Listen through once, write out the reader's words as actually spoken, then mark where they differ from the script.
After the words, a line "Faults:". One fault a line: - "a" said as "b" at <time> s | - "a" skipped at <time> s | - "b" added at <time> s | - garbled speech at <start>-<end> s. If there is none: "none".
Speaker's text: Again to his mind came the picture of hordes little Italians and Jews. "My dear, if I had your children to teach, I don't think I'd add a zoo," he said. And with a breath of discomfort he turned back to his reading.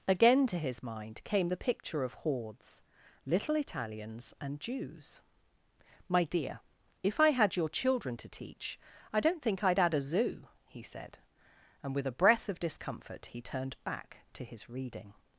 Again to his mind came the picture of hordes little Italians and Jews. "My dear, if I had your children to teach, I don't think I'd add a zoo," he said. And with a breath of discomfort he turned back to his reading.
Faults:
none